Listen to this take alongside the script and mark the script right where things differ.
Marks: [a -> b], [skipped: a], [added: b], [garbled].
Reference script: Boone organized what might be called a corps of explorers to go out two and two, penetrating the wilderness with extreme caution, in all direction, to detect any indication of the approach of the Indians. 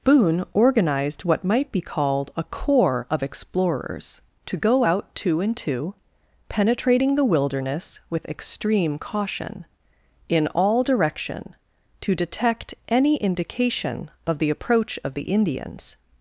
Boone organized what might be called a corps of explorers to go out two and two, penetrating the wilderness with extreme caution, in all direction, to detect any indication of the approach of the Indians.